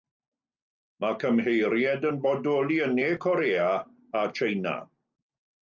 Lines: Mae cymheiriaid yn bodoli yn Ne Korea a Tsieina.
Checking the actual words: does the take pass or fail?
pass